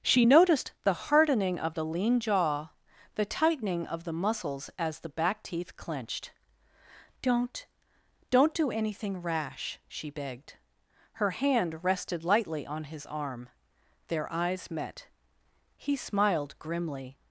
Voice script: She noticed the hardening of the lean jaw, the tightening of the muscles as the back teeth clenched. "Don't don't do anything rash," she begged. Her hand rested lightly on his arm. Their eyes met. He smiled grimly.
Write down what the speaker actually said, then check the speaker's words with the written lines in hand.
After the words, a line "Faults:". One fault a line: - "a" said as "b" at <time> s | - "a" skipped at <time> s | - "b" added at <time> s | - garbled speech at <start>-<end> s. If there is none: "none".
She noticed the hardening of the lean jaw, the tightening of the muscles as the back teeth clenched. "Don't don't do anything rash," she begged. Her hand rested lightly on his arm. Their eyes met. He smiled grimly.
Faults:
none